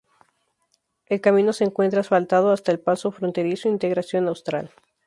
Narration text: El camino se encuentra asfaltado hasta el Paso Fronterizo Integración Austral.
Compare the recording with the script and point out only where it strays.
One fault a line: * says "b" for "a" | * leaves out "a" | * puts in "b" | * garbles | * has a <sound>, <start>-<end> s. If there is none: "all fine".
all fine